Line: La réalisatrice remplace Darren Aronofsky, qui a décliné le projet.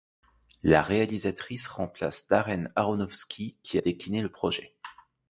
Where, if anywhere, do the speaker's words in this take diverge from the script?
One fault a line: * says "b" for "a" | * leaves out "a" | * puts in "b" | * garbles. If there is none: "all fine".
all fine